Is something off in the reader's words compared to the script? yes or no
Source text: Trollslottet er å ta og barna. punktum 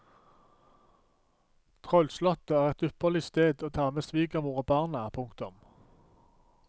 yes